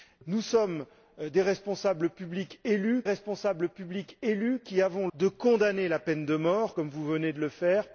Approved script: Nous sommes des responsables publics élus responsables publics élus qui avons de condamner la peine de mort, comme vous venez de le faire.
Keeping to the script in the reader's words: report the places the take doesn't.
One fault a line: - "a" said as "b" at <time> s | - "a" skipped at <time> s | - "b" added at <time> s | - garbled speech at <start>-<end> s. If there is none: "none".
none